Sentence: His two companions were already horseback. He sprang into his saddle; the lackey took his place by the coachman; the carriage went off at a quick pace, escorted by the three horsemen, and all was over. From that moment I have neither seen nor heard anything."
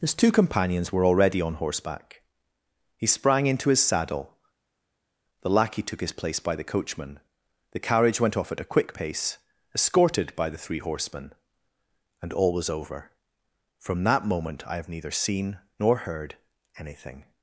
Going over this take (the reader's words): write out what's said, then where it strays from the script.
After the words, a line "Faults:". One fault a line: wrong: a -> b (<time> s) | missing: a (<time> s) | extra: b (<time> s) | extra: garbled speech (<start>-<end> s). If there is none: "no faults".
His two companions were already on horseback. He sprang into his saddle; the lackey took his place by the coachman; the carriage went off at a quick pace, escorted by the three horsemen, and all was over. From that moment I have neither seen nor heard anything."
Faults:
extra: on (1.4 s)